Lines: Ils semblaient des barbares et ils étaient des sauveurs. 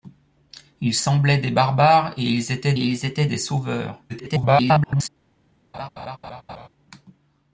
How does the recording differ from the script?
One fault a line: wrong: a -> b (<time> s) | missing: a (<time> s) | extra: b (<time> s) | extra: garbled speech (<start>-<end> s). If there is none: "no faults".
extra: ils étaient (2.8 s)
extra: garbled speech (4.1-5.1 s)